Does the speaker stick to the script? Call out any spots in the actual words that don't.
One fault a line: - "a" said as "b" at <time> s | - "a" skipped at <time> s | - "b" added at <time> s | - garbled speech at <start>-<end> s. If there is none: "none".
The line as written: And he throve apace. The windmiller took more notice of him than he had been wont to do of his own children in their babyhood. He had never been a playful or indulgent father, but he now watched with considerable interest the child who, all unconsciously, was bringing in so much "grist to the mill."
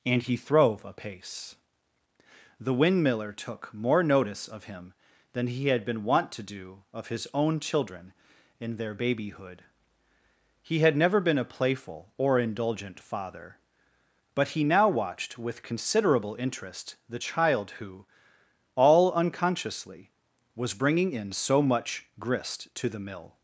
none